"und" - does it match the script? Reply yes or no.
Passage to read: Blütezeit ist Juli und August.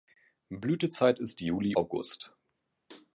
no